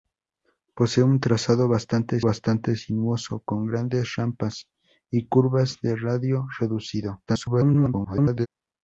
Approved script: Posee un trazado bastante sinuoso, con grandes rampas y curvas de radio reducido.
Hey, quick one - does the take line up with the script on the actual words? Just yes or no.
no